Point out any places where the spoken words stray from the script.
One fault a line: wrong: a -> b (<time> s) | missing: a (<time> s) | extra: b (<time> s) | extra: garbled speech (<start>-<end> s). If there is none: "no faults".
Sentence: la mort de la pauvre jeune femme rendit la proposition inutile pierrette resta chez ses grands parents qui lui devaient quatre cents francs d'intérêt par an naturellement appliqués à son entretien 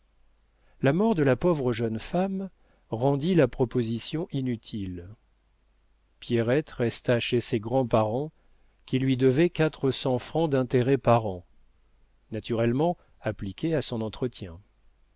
no faults